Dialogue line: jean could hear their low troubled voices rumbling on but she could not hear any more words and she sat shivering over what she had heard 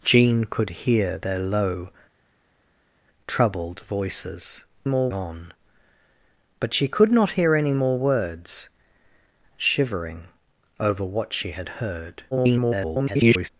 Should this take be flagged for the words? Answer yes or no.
yes